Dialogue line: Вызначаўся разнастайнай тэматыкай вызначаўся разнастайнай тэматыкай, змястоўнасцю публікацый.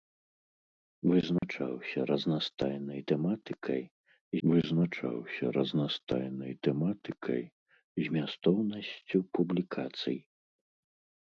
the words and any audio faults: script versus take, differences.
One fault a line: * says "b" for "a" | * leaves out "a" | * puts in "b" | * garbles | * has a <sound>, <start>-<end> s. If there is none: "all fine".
* has a dropout, 1.4-1.4 s